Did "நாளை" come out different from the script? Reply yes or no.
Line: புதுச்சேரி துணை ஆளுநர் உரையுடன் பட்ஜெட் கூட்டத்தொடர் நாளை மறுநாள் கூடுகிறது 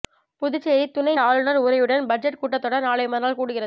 no